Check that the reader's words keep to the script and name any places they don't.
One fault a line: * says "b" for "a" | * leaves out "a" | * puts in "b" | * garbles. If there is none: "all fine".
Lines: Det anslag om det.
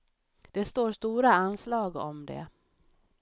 * puts in "står stora"